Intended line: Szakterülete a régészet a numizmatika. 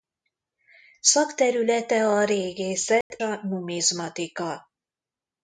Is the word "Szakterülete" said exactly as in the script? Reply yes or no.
yes